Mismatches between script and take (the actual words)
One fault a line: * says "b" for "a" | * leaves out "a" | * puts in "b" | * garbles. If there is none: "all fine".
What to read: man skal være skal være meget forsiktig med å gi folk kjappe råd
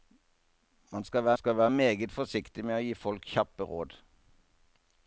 all fine